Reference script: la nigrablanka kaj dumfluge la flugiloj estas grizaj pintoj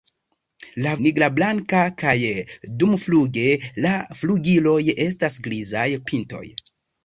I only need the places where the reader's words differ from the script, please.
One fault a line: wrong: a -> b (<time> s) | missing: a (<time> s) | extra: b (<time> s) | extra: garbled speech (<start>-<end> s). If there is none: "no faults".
no faults